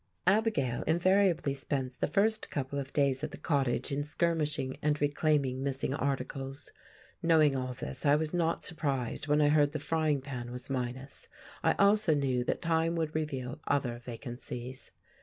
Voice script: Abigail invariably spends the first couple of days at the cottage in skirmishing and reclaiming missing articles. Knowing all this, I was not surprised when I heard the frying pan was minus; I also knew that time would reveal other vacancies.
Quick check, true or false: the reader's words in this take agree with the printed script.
true